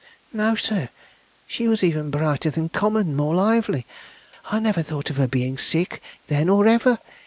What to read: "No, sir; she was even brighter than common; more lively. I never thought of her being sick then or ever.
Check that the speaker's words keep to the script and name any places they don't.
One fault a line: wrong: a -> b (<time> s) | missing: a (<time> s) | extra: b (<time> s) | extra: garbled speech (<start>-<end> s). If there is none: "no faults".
no faults